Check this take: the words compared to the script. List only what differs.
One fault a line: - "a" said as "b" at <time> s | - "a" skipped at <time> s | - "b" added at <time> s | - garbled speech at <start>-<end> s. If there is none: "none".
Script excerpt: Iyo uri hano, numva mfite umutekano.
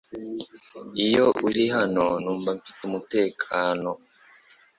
none